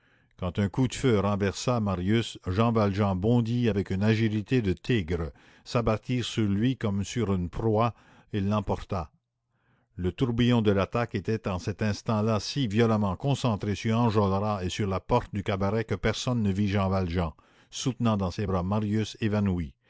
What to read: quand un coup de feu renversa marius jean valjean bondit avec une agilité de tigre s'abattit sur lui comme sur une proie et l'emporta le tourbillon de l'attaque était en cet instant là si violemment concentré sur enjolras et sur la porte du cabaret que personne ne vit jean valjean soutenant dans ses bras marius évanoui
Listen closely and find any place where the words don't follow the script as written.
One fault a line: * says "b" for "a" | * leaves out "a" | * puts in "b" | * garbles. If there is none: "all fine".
all fine